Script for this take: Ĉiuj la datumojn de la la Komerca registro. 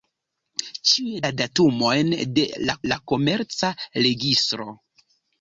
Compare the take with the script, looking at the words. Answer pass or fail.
pass